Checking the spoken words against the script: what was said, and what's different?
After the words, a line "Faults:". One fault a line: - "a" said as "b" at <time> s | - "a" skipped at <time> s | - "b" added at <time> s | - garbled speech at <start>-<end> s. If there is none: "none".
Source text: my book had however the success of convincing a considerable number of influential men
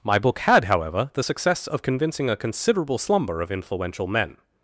my book had however the success of convincing a considerable slumber of influential men
Faults:
- "number" said as "slumber" at 3.0 s